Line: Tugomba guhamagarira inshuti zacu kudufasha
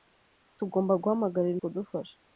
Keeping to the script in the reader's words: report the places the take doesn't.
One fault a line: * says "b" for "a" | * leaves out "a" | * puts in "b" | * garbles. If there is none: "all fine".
* leaves out "inshuti zacu"